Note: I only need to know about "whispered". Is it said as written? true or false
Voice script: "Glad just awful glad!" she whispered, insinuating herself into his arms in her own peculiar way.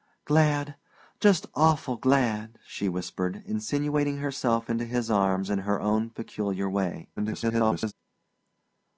true